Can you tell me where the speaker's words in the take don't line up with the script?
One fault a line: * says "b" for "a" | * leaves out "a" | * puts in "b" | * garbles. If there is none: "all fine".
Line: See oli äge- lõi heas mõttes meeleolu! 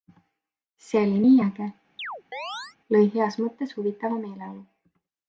* puts in "nii"
* puts in "huvitava"